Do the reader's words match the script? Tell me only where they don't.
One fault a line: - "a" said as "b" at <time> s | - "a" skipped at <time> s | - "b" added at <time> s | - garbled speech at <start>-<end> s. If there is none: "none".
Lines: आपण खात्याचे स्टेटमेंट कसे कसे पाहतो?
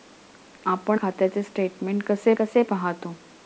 none